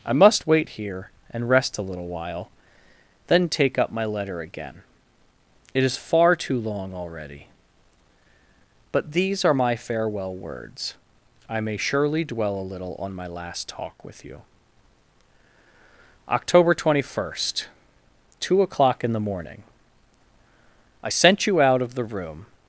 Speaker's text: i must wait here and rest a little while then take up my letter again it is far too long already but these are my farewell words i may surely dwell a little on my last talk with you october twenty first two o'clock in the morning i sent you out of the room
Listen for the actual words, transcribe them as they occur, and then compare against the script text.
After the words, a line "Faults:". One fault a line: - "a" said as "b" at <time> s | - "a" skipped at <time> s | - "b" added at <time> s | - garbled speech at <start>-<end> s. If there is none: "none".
i must wait here and rest a little while then take up my letter again it is far too long already but these are my farewell words i may surely dwell a little on my last talk with you october twenty first two o'clock in the morning i sent you out of the room
Faults:
none